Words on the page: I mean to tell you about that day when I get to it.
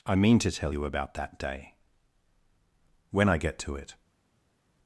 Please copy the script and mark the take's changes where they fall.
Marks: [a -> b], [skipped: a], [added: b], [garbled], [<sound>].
I mean to tell you about that day when I get to it.